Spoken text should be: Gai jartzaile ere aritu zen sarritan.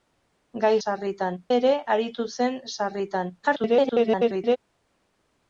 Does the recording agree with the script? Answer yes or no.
no